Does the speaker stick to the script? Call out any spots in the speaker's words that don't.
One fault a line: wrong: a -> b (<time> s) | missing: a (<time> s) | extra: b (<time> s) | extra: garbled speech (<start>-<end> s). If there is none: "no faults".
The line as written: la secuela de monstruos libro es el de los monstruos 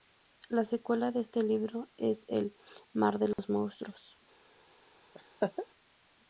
wrong: monstruos -> este (1.2 s)
extra: mar (2.9 s)